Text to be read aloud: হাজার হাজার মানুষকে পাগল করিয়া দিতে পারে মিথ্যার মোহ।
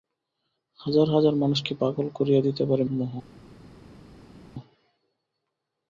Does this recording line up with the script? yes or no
no